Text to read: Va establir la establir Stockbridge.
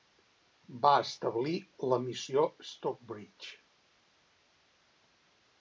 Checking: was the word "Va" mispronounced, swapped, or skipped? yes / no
no